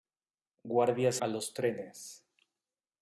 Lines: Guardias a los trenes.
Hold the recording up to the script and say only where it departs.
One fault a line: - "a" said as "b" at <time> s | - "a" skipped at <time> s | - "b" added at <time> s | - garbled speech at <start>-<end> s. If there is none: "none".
none